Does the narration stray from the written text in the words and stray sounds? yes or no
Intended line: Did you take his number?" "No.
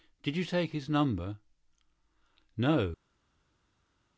no